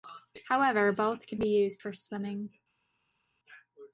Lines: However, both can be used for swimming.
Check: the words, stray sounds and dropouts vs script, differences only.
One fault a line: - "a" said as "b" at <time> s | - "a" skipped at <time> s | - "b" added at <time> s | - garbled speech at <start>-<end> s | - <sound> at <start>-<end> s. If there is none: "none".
none